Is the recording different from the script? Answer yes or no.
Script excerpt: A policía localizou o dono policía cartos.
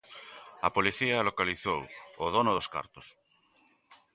yes